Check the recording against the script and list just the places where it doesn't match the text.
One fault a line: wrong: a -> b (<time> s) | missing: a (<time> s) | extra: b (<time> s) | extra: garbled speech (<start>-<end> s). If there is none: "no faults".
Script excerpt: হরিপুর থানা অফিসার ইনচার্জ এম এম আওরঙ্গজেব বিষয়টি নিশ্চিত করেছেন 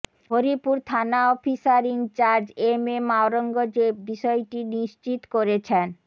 no faults